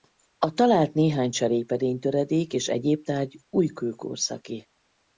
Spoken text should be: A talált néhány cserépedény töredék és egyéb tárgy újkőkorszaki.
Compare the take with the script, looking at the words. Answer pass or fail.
pass